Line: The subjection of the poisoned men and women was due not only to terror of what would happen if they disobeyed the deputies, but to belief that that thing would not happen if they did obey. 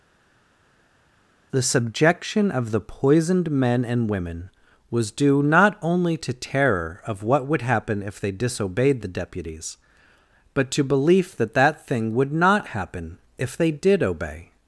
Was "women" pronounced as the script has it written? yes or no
yes